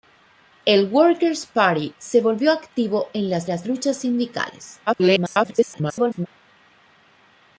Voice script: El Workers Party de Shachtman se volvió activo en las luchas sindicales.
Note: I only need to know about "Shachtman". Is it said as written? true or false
false